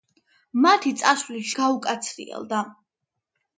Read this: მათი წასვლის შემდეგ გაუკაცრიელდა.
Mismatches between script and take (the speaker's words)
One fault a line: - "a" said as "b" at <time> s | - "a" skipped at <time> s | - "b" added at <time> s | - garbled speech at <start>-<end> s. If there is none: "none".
- "შემდეგ" skipped at 1.5 s